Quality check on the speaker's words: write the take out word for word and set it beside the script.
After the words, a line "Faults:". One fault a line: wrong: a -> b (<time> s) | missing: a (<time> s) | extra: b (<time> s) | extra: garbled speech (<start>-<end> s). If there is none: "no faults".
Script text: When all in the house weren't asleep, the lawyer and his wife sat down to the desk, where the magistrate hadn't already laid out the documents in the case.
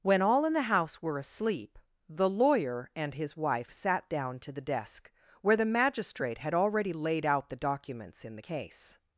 When all in the house were asleep, the lawyer and his wife sat down to the desk, where the magistrate had already laid out the documents in the case.
Faults:
wrong: weren't -> were (1.0 s)
wrong: hadn't -> had (6.4 s)